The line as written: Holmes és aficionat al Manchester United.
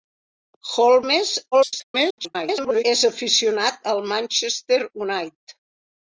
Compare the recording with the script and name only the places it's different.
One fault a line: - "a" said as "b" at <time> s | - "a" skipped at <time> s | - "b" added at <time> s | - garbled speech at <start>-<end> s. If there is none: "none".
- garbled speech at 1.5-2.8 s